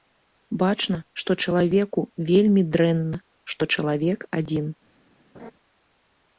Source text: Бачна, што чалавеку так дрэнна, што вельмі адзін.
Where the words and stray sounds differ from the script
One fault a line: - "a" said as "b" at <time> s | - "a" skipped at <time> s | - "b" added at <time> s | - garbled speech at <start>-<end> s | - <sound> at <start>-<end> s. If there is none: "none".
- "так" said as "вельмі" at 2.3 s
- "вельмі" said as "чалавек" at 3.8 s
- laugh at 5.3-5.5 s